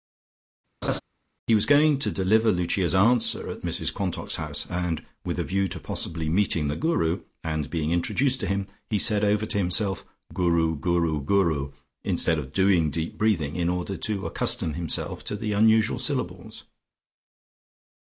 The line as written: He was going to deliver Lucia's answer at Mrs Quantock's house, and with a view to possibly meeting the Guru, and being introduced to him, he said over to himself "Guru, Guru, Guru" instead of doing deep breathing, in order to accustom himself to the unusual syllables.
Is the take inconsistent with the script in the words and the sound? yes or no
yes